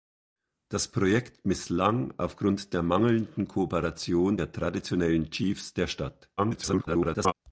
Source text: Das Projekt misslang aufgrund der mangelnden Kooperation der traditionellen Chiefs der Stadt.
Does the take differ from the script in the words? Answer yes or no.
yes